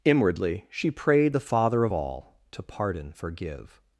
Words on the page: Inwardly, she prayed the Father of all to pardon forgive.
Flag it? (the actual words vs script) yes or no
no